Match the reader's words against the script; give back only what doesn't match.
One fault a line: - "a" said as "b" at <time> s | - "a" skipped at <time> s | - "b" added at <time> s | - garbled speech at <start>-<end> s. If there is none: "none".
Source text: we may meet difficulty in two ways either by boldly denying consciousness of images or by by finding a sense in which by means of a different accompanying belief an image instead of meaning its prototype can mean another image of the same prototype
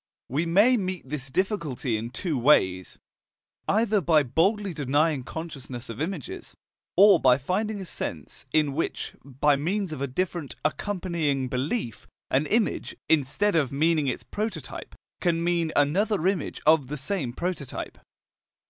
- "this" added at 1.1 s
- "by" skipped at 7.4 s